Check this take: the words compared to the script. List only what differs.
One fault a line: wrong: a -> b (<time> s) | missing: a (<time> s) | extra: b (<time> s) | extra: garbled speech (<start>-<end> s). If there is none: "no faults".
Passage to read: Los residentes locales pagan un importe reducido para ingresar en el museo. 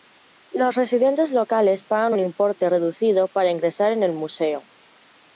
no faults